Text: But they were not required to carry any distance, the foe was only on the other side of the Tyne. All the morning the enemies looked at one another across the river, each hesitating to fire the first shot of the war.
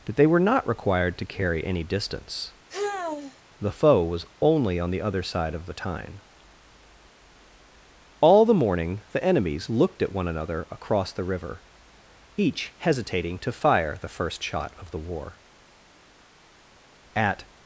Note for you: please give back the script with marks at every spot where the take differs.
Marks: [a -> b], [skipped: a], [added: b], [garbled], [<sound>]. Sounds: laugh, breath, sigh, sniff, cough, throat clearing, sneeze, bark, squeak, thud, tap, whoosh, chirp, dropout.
But they were not required to carry any distance, [sigh] the foe was only on the other side of the Tyne. All the morning the enemies looked at one another across the river, each hesitating to fire the first shot of the war. [added: At]